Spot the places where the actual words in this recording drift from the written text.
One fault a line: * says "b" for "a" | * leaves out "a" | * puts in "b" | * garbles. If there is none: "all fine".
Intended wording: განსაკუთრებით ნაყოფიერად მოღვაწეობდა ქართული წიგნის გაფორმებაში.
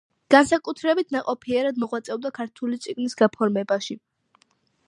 all fine